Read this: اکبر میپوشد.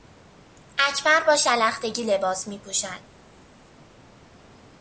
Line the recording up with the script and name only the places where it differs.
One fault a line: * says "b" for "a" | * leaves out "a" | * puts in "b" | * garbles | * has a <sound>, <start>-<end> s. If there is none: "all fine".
* puts in "با شلختگی لباس"